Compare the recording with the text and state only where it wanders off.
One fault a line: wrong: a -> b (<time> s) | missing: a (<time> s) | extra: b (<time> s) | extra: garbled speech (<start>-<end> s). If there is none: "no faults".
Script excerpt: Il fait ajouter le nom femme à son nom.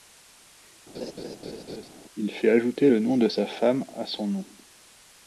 extra: de sa (3.2 s)